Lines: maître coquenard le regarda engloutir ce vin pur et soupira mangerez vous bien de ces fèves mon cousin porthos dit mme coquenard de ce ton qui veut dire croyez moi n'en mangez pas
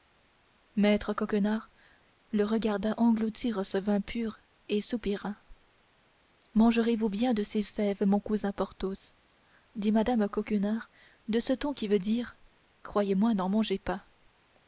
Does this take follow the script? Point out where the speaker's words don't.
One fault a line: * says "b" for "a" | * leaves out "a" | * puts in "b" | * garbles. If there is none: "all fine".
all fine